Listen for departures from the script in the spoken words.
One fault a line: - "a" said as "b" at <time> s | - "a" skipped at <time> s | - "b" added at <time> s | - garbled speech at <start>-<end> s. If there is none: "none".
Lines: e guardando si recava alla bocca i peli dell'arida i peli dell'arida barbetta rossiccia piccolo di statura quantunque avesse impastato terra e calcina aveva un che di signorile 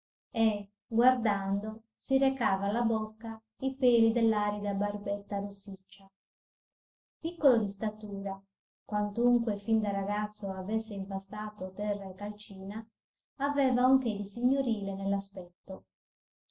- "i peli dell'arida" skipped at 4.7 s
- "fin da ragazzo" added at 9.6 s